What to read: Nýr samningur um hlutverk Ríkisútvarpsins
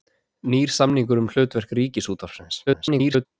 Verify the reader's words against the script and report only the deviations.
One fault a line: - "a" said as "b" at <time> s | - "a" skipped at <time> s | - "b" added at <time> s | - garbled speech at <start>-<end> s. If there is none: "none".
- garbled speech at 2.7-3.3 s